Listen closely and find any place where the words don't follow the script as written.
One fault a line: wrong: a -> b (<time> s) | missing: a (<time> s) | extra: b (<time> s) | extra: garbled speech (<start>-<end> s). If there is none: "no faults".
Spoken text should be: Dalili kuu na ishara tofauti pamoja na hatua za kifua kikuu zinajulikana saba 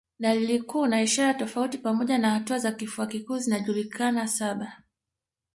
no faults